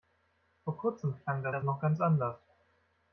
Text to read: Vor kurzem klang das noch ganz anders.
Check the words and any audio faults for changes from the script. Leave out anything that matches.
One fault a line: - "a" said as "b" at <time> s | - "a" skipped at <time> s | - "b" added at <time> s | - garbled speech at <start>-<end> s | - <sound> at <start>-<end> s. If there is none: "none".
- "das" added at 1.5 s